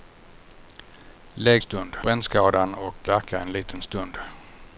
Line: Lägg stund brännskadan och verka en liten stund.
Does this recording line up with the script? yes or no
yes